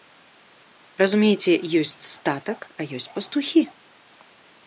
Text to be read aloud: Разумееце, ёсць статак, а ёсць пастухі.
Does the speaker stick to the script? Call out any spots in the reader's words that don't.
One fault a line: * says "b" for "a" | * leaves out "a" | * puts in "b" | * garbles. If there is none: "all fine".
all fine